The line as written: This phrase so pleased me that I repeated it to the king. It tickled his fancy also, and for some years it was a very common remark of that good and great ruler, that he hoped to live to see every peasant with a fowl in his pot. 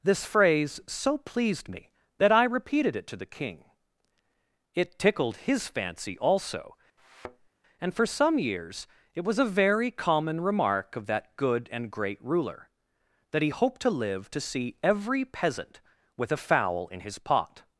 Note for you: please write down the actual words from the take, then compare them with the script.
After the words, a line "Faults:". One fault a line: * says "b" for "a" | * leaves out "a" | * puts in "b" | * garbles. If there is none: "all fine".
This phrase so pleased me that I repeated it to the king. It tickled his fancy also, and for some years it was a very common remark of that good and great ruler, that he hoped to live to see every peasant with a fowl in his pot.
Faults:
all fine